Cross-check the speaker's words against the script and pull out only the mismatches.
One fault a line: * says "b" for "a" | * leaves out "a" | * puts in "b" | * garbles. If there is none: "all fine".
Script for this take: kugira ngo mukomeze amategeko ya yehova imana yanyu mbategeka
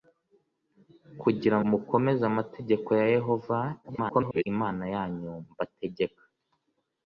* leaves out "ngo"
* garbles